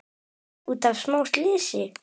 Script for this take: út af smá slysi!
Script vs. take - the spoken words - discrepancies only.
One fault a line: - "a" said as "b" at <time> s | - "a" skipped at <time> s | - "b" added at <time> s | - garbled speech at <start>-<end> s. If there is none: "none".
none